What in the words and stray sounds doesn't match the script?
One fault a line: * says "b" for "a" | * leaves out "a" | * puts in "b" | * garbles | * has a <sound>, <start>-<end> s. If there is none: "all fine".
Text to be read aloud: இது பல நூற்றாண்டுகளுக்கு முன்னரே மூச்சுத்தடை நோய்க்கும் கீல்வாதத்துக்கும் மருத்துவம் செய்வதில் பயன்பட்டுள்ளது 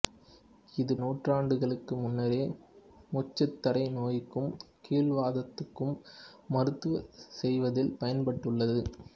* leaves out "பல"